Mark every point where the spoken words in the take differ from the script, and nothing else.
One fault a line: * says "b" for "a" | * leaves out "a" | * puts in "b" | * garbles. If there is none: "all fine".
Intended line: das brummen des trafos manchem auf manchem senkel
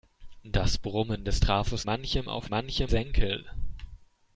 all fine